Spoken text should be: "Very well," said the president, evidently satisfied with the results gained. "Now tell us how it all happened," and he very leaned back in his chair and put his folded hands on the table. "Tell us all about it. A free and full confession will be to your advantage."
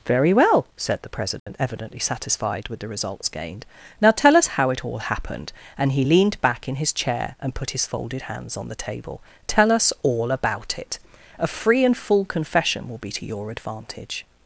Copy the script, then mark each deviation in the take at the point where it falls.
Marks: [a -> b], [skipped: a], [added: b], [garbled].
"Very well," said the president, evidently satisfied with the results gained. "Now tell us how it all happened," and he [skipped: very] leaned back in his chair and put his folded hands on the table. "Tell us all about it. A free and full confession will be to your advantage."